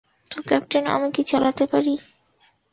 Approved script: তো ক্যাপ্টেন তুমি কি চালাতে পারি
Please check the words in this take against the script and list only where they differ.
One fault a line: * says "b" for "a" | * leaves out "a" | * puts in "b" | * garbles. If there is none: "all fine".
* says "আমি" for "তুমি"